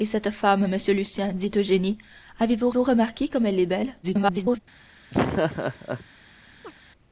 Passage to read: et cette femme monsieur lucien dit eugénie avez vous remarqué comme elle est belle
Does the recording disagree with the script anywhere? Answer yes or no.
yes